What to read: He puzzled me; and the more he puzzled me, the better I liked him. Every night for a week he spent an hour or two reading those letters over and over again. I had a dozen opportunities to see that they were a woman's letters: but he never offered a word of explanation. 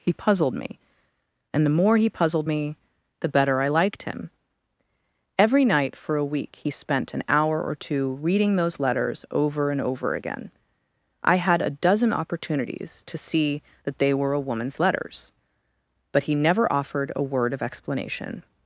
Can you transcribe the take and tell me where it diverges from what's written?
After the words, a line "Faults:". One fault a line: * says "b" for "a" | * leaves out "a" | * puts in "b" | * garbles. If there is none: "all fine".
He puzzled me; and the more he puzzled me, the better I liked him. Every night for a week he spent an hour or two reading those letters over and over again. I had a dozen opportunities to see that they were a woman's letters: but he never offered a word of explanation.
Faults:
all fine